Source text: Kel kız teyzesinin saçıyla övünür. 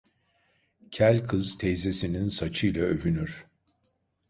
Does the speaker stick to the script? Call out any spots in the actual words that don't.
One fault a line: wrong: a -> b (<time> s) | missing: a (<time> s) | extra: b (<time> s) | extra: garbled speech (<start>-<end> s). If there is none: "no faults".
no faults